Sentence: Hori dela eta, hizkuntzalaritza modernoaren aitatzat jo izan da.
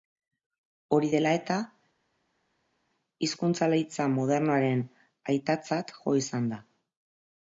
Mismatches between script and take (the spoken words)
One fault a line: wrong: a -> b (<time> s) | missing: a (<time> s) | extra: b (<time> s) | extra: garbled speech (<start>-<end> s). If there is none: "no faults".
no faults